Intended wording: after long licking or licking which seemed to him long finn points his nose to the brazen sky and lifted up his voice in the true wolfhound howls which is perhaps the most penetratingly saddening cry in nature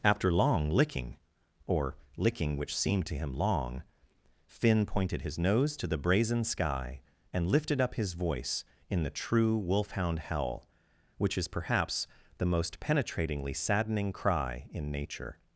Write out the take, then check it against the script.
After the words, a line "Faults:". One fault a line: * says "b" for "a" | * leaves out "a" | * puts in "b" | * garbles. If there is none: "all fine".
after long licking or licking which seemed to him long finn pointed his nose to the brazen sky and lifted up his voice in the true wolfhound howl which is perhaps the most penetratingly saddening cry in nature
Faults:
* says "pointed" for "points"
* says "howl" for "howls"